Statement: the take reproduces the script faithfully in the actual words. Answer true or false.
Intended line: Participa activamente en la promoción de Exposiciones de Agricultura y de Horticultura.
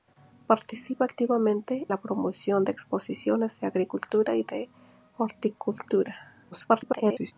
false